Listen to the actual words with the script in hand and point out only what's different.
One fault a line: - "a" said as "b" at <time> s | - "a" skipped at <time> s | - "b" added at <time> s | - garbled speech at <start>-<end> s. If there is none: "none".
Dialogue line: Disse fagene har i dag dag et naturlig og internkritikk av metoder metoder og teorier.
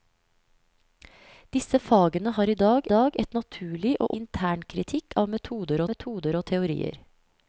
none